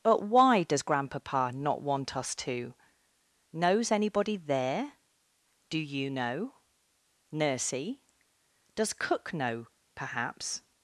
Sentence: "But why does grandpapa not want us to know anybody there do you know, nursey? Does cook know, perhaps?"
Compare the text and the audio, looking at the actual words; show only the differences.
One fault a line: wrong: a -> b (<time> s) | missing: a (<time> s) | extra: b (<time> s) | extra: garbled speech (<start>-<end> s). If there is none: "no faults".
wrong: know -> knows (3.5 s)